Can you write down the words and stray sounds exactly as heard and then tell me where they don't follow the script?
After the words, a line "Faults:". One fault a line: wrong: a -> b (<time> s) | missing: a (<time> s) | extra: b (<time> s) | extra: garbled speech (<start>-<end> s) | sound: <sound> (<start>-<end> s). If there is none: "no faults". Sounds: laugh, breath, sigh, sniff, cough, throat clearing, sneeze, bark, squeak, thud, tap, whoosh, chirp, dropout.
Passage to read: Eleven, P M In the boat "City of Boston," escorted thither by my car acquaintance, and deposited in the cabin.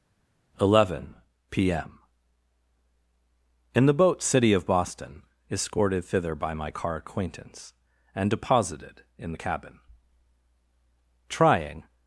Eleven, P M In the boat "City of Boston," escorted thither by my car acquaintance, and deposited in the cabin. Trying
Faults:
extra: Trying (11.3 s)